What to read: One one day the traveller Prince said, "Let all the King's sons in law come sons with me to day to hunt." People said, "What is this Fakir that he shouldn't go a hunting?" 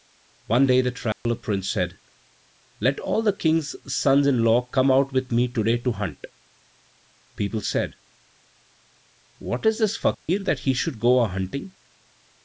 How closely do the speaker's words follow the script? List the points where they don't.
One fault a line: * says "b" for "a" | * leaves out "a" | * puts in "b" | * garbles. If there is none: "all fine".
* leaves out "one"
* says "out" for "sons"
* says "should" for "shouldn't"